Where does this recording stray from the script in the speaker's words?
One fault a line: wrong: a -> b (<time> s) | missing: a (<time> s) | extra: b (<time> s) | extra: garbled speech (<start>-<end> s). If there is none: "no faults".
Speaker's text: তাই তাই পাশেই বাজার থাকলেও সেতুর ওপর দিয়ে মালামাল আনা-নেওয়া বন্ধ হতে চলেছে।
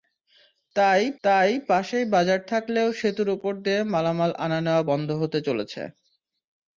no faults